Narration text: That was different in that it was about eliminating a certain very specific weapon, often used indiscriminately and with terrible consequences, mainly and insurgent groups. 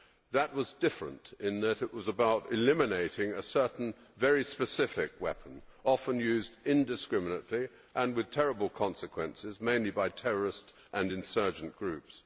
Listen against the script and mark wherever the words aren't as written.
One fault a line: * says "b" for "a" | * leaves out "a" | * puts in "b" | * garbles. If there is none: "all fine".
* puts in "by terrorist"